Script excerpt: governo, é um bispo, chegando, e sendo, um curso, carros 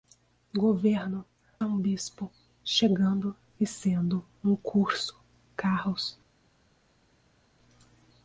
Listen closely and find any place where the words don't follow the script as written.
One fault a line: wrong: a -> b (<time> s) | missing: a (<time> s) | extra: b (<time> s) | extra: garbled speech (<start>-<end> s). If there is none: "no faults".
no faults